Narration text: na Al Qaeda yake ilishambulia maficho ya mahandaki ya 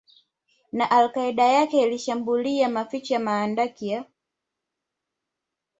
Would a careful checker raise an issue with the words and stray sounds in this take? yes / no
no